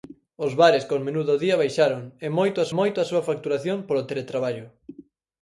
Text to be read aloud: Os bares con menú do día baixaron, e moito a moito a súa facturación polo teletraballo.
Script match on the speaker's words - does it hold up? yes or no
yes